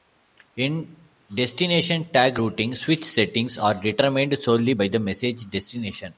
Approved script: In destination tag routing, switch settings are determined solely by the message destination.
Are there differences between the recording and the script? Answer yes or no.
no